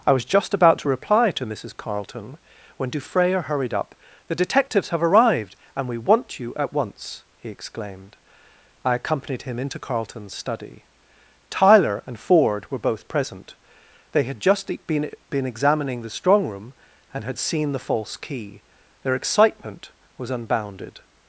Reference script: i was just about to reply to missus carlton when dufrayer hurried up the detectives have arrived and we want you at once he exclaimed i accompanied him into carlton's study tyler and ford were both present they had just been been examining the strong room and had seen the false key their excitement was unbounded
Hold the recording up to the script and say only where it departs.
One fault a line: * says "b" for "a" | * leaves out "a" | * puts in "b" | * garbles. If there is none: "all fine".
all fine